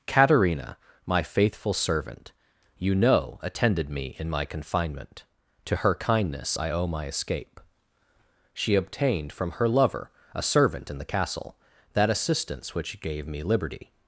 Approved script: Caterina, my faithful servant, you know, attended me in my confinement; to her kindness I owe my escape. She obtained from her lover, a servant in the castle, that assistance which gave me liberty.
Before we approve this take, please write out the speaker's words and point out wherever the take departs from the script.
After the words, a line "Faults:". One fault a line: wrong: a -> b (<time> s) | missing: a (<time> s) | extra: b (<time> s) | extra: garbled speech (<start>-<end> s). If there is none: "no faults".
Caterina, my faithful servant, you know, attended me in my confinement; to her kindness I owe my escape. She obtained from her lover, a servant in the castle, that assistance which gave me liberty.
Faults:
no faults